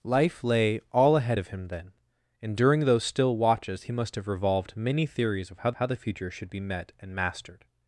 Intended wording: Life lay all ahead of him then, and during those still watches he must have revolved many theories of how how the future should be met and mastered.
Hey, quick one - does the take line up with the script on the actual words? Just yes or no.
yes